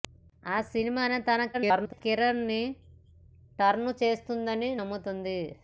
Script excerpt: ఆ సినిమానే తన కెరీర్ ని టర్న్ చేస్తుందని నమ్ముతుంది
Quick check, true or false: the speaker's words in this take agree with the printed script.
false